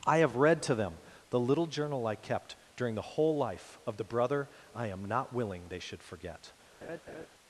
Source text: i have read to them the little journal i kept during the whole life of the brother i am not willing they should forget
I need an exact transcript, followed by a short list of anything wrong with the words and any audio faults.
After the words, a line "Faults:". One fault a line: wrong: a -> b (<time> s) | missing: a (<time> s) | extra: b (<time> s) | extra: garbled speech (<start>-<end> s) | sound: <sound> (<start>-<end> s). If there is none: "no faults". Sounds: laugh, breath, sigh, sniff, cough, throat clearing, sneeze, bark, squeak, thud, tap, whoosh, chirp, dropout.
i have read to them the little journal i kept during the whole life of the brother i am not willing they should forget
Faults:
sound: laugh (6.8-7.3 s)